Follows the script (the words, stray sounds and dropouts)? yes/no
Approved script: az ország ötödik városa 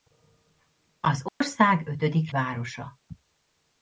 no